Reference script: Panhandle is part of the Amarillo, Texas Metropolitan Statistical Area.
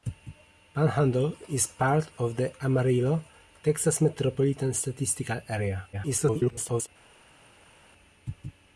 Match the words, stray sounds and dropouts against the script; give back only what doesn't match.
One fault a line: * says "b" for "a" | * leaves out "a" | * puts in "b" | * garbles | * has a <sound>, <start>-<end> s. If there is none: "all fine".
* garbles